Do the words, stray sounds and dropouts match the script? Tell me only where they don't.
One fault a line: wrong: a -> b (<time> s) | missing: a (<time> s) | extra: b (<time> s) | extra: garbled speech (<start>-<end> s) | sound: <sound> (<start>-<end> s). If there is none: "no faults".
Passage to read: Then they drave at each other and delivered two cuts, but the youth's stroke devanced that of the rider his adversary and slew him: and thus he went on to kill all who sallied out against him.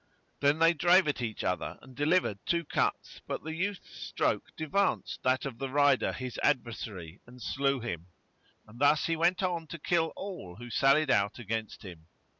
no faults